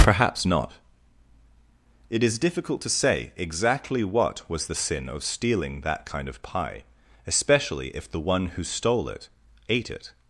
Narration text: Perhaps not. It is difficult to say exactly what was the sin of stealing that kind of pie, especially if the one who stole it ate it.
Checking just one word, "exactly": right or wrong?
right